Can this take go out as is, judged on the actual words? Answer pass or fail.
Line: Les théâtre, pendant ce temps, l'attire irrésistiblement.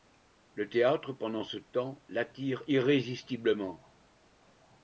fail